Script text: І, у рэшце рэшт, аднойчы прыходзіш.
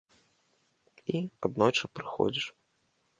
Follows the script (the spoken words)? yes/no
no